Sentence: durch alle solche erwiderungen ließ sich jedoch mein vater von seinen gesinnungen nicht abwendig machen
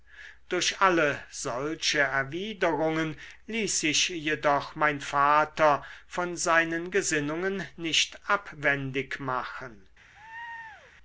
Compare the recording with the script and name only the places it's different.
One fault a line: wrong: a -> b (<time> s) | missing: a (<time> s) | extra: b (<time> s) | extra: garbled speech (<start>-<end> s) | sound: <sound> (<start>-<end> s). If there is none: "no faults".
sound: laugh (10.1-10.9 s)